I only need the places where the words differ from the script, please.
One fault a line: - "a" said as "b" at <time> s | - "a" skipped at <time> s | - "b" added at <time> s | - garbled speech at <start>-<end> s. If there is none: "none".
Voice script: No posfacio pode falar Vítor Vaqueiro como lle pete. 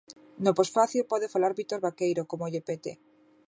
none